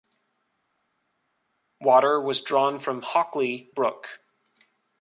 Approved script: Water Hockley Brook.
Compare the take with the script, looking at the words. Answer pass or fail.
fail